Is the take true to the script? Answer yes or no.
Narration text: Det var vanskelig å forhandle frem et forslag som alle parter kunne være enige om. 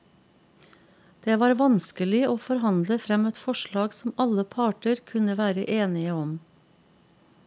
yes